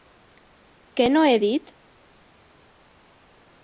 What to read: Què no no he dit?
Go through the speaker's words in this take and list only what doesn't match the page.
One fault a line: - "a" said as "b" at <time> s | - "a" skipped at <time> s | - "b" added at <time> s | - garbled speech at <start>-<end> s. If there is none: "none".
- "no" skipped at 1.2 s